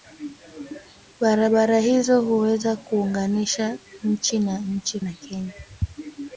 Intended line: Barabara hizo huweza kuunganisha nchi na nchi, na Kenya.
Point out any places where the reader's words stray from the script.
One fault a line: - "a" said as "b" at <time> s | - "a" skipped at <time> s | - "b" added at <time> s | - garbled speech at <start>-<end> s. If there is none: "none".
none